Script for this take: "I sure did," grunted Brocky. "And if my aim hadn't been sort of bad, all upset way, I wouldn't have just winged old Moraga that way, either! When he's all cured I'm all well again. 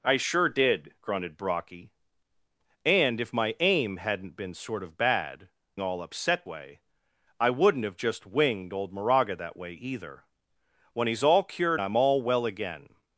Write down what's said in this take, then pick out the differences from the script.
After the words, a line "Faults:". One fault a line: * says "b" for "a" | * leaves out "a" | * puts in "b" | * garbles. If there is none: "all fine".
"I sure did," grunted Brocky. "And if my aim hadn't been sort of bad, all upset way, I wouldn't have just winged old Moraga that way, either! When he's all cured I'm all well again.
Faults:
all fine